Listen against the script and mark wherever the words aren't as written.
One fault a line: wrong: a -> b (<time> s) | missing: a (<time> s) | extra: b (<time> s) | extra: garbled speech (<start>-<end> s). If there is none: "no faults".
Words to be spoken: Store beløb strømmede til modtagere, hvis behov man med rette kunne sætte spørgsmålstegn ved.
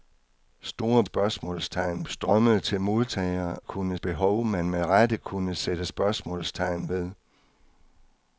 wrong: beløb -> spørgsmålstegn (1.0 s)
wrong: hvis -> kunne (3.6 s)